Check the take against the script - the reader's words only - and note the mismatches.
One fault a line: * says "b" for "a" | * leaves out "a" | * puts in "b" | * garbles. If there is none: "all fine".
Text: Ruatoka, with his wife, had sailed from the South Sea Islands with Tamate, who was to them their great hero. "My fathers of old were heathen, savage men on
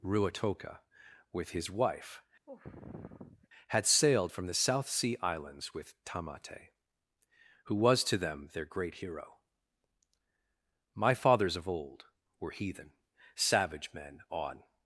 all fine